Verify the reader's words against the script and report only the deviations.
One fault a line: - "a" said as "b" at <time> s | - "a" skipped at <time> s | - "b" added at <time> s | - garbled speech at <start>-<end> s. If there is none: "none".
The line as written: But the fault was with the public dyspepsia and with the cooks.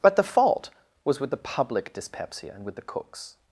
none